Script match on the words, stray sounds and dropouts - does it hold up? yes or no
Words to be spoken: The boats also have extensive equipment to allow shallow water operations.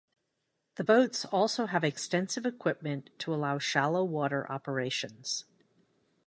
yes